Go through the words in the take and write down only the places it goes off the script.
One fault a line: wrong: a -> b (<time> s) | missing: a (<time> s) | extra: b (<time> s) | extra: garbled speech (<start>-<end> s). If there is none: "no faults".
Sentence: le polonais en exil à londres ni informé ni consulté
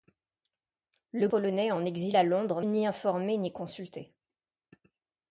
no faults